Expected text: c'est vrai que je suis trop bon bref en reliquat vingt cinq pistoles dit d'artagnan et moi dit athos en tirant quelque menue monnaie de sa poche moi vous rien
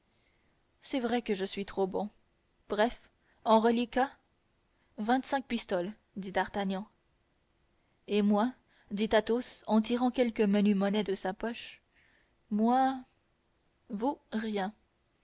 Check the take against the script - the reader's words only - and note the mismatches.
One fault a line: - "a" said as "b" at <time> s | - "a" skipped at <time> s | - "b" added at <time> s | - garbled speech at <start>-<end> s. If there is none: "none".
none